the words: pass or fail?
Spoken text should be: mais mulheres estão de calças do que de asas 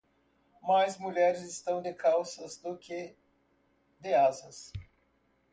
pass